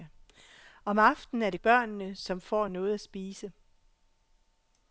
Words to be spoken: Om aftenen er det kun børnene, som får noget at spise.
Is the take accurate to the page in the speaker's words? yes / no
no